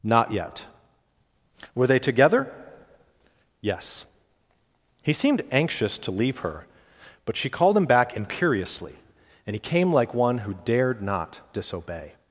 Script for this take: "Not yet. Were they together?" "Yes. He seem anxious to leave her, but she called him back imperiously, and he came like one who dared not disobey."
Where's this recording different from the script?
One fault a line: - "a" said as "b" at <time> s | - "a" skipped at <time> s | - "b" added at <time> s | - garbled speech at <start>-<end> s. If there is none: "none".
- "seem" said as "seemed" at 5.1 s